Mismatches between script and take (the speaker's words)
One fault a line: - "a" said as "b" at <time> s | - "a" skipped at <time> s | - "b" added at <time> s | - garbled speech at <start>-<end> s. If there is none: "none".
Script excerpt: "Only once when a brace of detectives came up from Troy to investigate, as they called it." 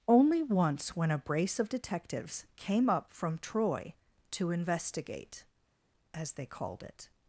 none